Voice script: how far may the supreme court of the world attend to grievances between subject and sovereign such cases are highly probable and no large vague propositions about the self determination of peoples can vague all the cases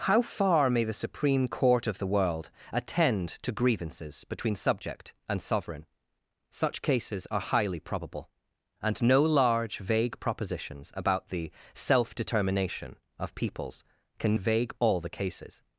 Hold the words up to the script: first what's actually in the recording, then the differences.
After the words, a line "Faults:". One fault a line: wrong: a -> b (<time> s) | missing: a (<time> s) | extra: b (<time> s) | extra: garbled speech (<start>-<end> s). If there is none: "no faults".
how far may the supreme court of the world attend to grievances between subject and sovereign such cases are highly probable and no large vague propositions about the self determination of peoples can vague all the cases
Faults:
no faults